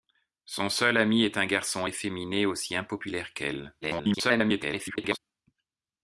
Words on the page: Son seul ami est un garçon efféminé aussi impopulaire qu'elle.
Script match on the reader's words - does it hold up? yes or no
no